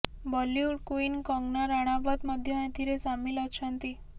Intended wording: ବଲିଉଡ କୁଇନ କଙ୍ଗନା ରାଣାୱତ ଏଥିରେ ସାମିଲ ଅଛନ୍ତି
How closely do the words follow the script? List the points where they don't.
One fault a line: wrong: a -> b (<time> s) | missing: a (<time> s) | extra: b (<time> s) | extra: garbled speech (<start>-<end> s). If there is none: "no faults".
extra: ମଧ୍ୟ (2.3 s)